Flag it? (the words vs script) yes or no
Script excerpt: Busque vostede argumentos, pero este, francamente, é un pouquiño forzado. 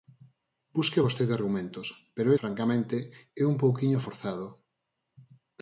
yes